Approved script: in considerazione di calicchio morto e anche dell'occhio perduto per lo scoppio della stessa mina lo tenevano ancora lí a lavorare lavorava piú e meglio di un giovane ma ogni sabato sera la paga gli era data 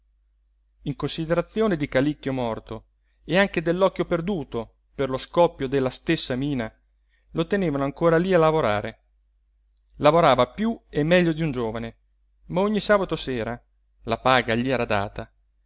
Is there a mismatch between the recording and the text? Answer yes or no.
no